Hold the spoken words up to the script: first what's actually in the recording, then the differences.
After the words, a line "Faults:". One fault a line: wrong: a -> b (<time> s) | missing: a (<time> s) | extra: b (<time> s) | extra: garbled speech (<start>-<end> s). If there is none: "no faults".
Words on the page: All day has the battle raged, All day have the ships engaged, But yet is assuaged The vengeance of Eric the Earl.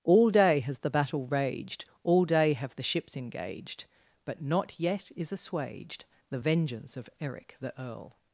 All day has the battle raged, All day have the ships engaged, But not yet is assuaged The vengeance of Eric the Earl.
Faults:
extra: not (4.4 s)